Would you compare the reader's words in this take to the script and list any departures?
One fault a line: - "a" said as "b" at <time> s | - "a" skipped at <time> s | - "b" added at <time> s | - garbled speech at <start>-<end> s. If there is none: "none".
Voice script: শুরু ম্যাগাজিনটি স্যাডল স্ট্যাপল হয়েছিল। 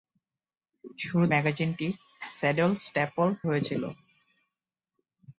none